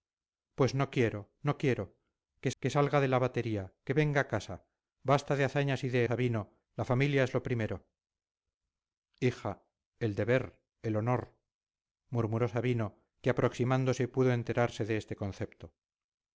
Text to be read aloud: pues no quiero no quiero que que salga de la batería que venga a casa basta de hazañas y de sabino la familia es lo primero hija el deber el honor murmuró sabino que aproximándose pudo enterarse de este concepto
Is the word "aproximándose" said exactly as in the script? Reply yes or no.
yes